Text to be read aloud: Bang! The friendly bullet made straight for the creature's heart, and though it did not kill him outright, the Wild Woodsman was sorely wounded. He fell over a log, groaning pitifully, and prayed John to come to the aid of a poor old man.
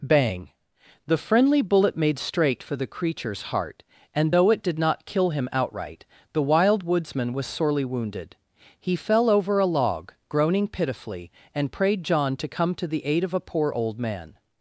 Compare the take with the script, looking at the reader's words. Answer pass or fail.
pass